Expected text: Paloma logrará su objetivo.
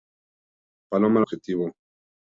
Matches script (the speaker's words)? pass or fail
fail